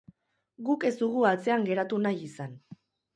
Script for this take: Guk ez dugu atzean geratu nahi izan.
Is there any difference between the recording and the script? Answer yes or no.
no